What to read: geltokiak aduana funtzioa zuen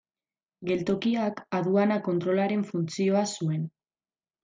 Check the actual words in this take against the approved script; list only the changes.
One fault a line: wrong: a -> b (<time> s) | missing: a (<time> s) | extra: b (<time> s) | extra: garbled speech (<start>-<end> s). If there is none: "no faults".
extra: kontrolaren (2.1 s)